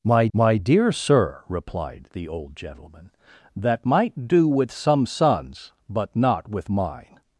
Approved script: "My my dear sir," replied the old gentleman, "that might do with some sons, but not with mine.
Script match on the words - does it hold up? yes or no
yes